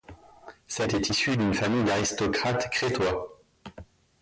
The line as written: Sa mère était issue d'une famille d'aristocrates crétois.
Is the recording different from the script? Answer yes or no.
yes